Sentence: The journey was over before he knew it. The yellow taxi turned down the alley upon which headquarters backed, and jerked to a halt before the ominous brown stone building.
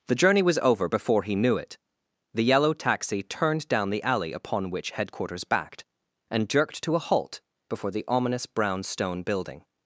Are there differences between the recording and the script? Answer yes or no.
no